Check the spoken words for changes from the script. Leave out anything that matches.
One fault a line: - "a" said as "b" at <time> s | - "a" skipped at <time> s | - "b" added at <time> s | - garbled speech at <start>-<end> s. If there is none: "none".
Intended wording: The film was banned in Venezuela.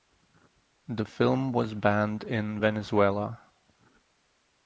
none